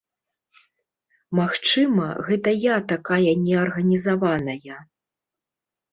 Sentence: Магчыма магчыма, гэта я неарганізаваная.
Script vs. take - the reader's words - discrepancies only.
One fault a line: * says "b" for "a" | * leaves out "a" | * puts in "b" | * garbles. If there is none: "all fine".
* leaves out "магчыма"
* puts in "такая"